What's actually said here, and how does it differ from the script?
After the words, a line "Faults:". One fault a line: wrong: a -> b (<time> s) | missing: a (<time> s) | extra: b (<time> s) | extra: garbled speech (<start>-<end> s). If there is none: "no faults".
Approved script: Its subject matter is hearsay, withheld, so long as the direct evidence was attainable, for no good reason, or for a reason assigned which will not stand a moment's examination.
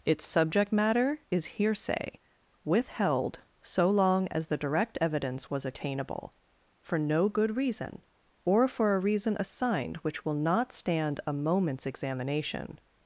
Its subject matter is hearsay, withheld, so long as the direct evidence was attainable, for no good reason, or for a reason assigned which will not stand a moment's examination.
Faults:
no faults